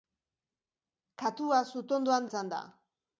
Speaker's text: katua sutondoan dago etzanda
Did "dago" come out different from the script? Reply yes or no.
yes